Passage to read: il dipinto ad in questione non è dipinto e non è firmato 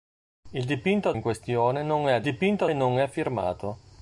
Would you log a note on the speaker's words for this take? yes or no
no